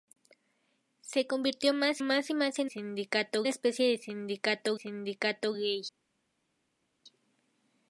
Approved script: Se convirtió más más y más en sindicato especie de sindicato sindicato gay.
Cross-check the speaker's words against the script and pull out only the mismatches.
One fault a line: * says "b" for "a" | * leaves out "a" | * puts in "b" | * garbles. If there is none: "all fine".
all fine